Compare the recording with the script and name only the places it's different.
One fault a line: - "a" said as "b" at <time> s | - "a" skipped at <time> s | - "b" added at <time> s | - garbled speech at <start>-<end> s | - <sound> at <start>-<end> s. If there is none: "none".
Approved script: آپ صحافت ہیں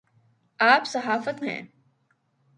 none